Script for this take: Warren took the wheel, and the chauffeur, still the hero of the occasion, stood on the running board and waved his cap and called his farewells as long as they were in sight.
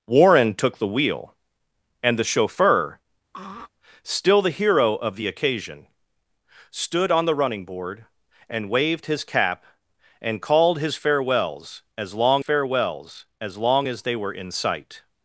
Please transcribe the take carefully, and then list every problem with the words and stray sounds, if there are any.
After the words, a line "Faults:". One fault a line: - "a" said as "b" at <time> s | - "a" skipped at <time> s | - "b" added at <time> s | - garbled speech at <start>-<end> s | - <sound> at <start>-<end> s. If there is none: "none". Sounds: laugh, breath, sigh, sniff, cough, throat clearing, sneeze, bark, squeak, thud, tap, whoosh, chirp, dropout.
Warren took the wheel, and the chauffeur, still the hero of the occasion, stood on the running board and waved his cap and called his farewells as long farewells as long as they were in sight.
Faults:
- throat clearing at 3.3-3.7 s
- "farewells as long" added at 12.4 s